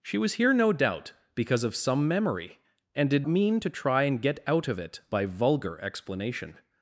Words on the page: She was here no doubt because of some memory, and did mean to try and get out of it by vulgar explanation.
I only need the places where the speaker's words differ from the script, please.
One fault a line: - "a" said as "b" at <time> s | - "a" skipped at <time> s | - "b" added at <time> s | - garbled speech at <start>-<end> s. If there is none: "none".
none